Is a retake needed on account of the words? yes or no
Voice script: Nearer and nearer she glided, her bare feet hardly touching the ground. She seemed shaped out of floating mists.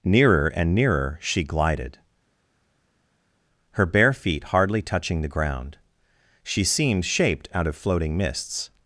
no